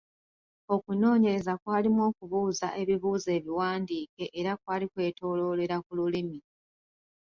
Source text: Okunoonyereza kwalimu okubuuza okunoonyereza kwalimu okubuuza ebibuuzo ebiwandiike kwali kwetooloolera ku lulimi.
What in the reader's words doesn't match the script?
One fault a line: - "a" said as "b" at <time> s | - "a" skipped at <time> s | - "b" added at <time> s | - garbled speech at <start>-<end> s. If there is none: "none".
- "okunoonyereza kwalimu okubuuza" skipped at 2.7 s
- "era" added at 4.4 s